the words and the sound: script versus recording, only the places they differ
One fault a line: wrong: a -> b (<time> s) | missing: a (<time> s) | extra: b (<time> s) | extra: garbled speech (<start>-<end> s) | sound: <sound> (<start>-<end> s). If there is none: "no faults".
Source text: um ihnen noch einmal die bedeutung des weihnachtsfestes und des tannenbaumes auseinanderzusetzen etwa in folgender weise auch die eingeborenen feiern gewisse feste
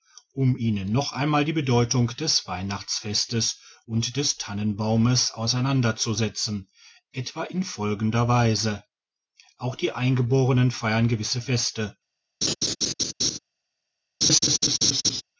sound: laugh (12.4-13.4 s)
sound: laugh (14.2-15.2 s)